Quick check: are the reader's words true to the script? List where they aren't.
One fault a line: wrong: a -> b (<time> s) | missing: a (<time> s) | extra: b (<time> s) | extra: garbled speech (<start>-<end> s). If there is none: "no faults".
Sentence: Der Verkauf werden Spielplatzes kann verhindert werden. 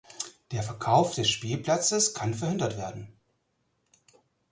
wrong: werden -> des (1.1 s)